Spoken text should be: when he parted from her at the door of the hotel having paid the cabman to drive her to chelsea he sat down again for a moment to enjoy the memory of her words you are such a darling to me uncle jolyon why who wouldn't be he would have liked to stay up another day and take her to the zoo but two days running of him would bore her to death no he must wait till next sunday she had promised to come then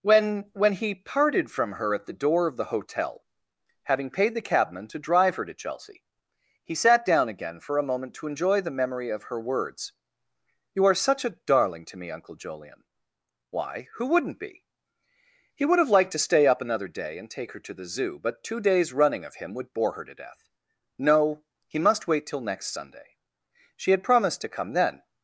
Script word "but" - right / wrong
right